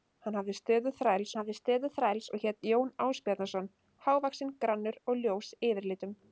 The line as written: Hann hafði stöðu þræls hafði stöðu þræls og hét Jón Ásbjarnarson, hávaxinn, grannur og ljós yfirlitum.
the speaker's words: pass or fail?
pass